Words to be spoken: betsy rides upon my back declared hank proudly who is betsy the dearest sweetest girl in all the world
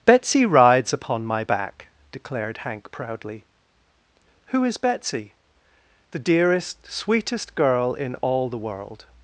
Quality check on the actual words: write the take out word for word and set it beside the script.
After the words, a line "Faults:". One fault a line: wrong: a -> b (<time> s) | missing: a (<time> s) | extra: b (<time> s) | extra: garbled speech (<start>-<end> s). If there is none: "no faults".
betsy rides upon my back declared hank proudly who is betsy the dearest sweetest girl in all the world
Faults:
no faults